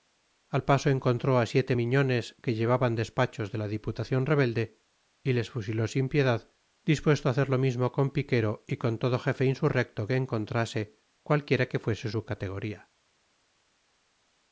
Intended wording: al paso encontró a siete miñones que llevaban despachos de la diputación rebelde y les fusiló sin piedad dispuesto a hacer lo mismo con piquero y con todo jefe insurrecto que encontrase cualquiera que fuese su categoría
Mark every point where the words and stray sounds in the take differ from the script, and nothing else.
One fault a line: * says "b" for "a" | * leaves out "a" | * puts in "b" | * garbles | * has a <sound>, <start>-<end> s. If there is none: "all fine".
all fine